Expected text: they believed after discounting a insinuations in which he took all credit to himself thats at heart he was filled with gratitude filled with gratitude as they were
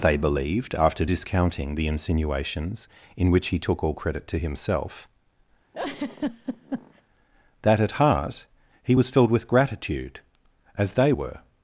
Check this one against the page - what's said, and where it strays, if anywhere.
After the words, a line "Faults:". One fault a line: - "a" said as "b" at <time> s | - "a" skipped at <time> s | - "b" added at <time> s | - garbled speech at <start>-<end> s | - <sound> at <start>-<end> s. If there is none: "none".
they believed after discounting the insinuations in which he took all credit to himself that at heart he was filled with gratitude as they were
Faults:
- "a" said as "the" at 1.7 s
- laugh at 5.7-7.0 s
- "thats" said as "that" at 7.6 s
- "filled with gratitude" skipped at 10.2 s